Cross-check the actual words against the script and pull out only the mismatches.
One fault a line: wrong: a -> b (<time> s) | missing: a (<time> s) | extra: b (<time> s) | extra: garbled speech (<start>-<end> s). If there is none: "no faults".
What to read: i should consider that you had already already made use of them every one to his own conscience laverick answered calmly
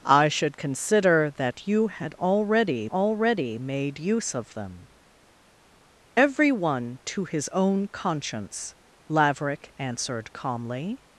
no faults